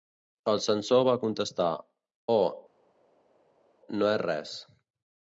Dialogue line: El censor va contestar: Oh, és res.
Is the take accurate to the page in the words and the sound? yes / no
no